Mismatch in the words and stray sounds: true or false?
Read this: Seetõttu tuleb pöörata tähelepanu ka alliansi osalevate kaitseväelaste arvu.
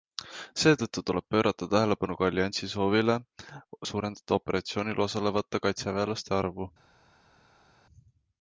true